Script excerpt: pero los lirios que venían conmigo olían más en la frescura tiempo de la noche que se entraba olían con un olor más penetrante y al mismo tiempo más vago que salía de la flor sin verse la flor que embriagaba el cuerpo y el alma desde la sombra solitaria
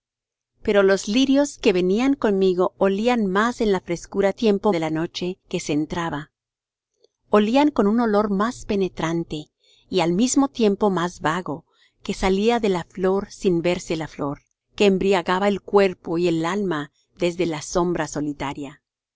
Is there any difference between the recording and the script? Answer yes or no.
no